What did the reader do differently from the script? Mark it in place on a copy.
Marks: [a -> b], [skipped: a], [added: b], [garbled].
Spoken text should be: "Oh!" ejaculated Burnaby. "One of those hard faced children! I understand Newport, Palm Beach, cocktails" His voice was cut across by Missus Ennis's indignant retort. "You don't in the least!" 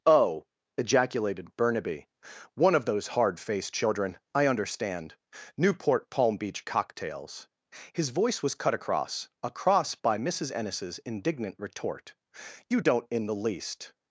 "Oh!" ejaculated Burnaby. "One of those hard faced children! I understand Newport, Palm Beach, cocktails" His voice was cut across [added: across] by Missus Ennis's indignant retort. "You don't in the least!"